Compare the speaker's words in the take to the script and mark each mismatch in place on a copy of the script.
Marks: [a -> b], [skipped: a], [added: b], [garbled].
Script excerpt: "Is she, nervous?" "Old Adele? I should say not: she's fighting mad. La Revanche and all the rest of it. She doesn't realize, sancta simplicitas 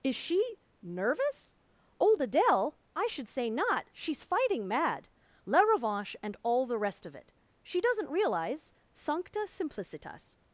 "Is she, nervous?" "Old Adele? I should say not: she's fighting mad. La Revanche and all the rest of it. She doesn't realize, sancta simplicitas